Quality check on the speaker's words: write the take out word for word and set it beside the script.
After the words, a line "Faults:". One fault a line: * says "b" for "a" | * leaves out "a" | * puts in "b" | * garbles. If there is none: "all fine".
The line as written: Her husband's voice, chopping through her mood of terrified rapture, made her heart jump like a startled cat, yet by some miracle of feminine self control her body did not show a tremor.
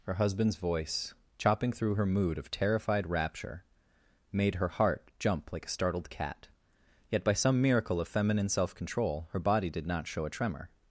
Her husband's voice, chopping through her mood of terrified rapture, made her heart jump like a startled cat, yet by some miracle of feminine self control her body did not show a tremor.
Faults:
all fine